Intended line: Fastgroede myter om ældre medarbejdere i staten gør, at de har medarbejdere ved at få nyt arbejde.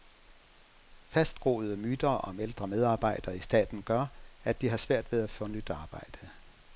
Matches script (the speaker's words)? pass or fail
fail